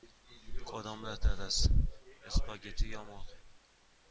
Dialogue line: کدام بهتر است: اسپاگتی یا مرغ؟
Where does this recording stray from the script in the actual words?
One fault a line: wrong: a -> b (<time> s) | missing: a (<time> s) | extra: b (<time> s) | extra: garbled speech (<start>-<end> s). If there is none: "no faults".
no faults